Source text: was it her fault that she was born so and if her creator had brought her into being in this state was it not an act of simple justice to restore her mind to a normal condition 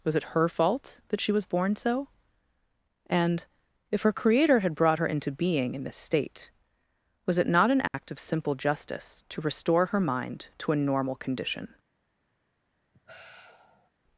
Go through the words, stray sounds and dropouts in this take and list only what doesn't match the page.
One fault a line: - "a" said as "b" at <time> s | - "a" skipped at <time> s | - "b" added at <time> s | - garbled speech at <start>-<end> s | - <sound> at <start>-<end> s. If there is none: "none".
- dropout at 7.9-7.9 s
- sigh at 12.9-13.9 s